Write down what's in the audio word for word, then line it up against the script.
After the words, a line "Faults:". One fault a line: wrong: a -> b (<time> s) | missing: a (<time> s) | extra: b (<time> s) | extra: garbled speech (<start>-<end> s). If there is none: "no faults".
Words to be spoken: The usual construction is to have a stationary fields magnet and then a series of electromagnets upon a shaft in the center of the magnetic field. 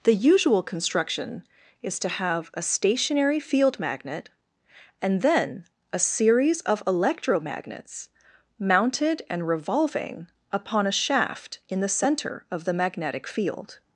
The usual construction is to have a stationary field magnet and then a series of electromagnets mounted and revolving upon a shaft in the center of the magnetic field.
Faults:
wrong: fields -> field (3.4 s)
extra: mounted and revolving (8.6 s)